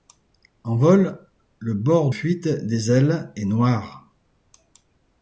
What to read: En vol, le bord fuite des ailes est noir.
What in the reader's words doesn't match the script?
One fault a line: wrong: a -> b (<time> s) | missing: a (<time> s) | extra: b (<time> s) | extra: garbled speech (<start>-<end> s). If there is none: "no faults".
no faults